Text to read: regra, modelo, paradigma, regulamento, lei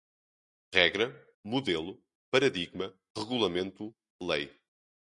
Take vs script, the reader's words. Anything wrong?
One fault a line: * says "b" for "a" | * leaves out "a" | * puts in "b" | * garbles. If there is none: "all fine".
all fine